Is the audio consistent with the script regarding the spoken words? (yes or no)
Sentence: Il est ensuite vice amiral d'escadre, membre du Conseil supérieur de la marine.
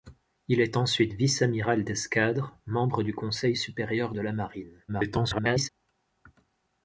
no